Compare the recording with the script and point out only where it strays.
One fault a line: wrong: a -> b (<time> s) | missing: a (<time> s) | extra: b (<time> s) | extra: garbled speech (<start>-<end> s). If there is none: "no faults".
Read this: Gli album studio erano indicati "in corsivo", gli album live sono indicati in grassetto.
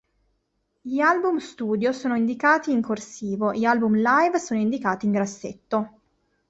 wrong: erano -> sono (1.9 s)